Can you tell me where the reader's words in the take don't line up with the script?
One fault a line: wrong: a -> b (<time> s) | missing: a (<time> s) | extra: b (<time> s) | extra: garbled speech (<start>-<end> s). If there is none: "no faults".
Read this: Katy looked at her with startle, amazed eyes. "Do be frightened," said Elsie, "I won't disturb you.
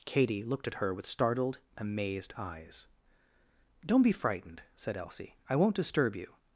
wrong: startle -> startled (1.1 s)
wrong: Do -> Don't (3.9 s)